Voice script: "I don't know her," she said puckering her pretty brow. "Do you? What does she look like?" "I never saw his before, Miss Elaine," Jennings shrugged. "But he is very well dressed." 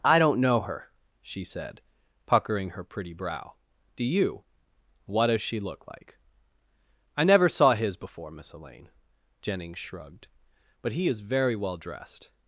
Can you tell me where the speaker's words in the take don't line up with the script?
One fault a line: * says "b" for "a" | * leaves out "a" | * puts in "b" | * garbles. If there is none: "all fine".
all fine